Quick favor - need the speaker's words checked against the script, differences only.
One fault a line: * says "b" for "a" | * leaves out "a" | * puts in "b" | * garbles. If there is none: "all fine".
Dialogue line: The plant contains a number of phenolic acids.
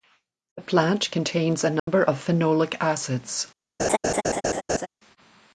all fine